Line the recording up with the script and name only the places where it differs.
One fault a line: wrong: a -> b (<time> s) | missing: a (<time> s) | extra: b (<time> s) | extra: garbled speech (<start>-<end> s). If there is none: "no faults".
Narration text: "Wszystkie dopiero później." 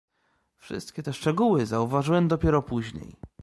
extra: te szczegóły zauważyłem (1.0 s)